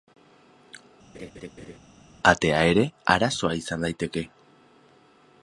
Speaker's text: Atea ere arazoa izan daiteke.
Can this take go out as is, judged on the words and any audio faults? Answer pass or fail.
fail